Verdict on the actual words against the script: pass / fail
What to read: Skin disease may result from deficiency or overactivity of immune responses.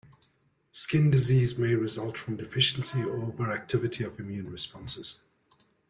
pass